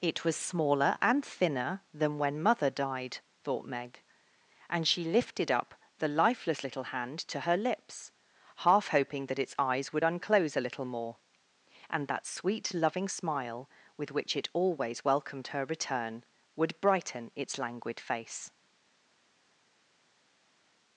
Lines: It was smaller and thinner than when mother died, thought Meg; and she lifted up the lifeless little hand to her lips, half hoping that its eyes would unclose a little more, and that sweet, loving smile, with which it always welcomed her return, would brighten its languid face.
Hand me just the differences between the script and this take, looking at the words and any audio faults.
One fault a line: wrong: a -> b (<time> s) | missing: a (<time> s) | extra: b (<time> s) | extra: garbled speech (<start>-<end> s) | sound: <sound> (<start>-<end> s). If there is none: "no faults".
no faults